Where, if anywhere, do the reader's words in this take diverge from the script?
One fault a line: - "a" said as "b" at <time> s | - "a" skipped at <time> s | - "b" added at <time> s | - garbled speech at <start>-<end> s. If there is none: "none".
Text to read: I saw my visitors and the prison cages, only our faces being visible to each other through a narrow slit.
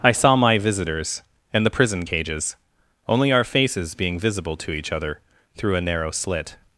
none